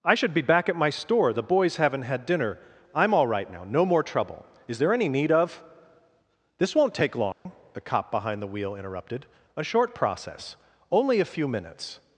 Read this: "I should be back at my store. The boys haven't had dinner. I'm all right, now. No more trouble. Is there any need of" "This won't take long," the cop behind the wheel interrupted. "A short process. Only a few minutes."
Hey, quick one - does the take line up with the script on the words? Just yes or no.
yes